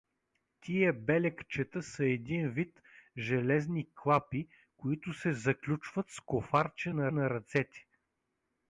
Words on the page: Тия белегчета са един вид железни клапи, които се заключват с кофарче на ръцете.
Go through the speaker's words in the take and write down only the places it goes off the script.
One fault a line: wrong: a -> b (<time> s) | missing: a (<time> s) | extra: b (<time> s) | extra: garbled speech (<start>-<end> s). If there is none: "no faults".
extra: на (7.1 s)